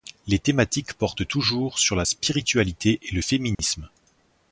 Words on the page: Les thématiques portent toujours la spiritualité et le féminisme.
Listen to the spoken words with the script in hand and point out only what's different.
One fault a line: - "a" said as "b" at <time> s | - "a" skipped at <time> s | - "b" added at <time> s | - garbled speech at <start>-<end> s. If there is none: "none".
- "sur" added at 1.8 s